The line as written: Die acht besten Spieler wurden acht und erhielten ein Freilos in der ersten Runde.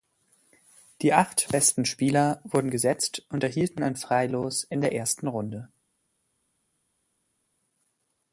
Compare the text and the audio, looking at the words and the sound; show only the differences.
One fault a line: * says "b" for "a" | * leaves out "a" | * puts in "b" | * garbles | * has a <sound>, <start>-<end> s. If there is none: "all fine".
* says "gesetzt" for "acht"